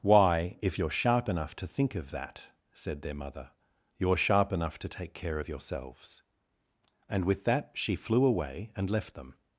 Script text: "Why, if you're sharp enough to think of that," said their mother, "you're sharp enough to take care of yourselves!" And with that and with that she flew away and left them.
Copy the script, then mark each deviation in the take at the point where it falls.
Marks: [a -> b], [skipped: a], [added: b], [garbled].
"Why, if you're sharp enough to think of that," said their mother, "you're sharp enough to take care of yourselves!" And with that [skipped: and with that] she flew away and left them.